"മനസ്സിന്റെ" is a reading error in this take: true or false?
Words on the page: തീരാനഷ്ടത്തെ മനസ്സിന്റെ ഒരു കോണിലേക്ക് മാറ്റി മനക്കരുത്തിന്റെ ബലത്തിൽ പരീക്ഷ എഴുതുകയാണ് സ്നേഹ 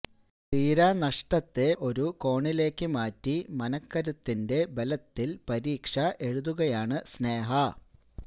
true